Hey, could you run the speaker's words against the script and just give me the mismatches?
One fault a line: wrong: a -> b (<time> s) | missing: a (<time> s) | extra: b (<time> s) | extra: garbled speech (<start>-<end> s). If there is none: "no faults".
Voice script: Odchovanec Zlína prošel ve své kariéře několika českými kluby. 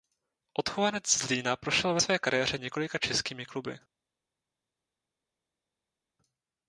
no faults